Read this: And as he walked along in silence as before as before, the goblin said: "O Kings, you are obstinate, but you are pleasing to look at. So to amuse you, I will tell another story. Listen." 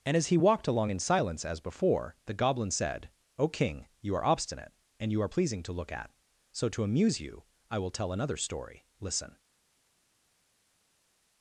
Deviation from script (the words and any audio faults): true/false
true